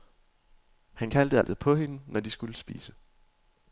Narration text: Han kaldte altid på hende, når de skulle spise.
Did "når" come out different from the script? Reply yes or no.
no